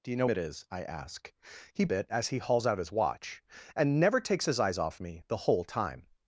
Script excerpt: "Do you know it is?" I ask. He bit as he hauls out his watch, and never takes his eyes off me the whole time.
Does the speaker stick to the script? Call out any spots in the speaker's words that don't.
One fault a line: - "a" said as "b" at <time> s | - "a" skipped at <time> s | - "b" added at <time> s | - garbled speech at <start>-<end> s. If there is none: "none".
none